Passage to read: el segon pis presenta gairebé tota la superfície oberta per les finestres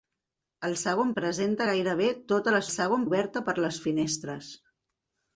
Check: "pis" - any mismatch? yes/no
yes